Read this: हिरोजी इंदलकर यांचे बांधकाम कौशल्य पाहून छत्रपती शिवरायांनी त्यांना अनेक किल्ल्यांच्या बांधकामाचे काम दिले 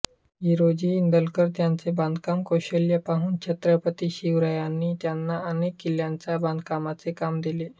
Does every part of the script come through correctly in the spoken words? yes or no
yes